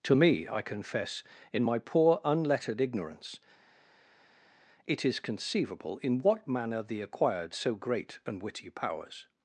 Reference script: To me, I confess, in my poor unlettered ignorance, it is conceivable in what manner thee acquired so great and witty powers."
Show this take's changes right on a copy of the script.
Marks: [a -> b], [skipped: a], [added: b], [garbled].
To me, I confess, in my poor unlettered ignorance, it is conceivable in what manner thee acquired so great and witty powers."